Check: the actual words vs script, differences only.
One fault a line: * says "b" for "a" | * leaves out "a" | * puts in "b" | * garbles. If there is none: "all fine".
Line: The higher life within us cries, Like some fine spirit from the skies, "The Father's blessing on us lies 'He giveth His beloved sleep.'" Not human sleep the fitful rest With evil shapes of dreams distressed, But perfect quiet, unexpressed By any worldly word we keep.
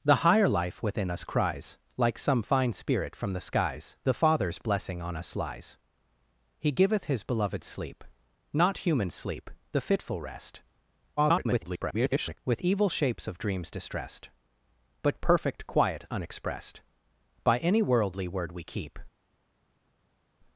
* garbles